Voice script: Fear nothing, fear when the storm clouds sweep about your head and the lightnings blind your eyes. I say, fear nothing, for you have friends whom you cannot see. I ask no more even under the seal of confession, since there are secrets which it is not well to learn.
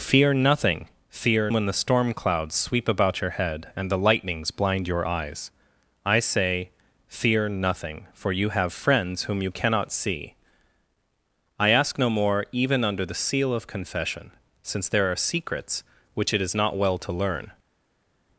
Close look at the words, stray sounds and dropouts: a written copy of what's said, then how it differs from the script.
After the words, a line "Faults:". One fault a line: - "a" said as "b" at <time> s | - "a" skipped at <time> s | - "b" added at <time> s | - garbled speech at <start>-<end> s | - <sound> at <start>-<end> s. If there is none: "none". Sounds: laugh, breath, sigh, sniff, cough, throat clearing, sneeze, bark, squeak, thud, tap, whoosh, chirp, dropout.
Fear nothing, fear when the storm clouds sweep about your head and the lightnings blind your eyes. I say, fear nothing, for you have friends whom you cannot see. I ask no more even under the seal of confession, since there are secrets which it is not well to learn.
Faults:
none